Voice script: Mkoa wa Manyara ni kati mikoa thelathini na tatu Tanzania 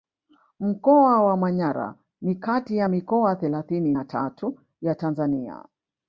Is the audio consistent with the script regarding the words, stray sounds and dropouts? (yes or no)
no